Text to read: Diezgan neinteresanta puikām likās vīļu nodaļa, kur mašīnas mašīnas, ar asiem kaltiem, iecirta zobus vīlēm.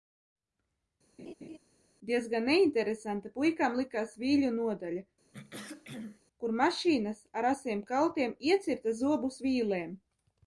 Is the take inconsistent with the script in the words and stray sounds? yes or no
yes